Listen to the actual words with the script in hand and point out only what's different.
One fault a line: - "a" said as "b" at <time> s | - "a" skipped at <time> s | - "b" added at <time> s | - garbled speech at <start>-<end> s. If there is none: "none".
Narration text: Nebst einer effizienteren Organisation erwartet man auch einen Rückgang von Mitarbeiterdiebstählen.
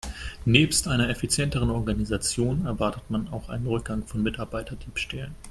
none